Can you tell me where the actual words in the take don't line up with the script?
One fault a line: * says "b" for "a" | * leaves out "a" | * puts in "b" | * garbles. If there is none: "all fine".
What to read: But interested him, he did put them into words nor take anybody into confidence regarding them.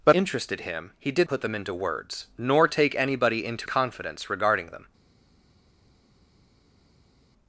all fine